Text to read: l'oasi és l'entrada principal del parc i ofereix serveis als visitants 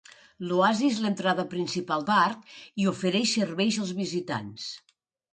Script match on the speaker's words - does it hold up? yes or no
no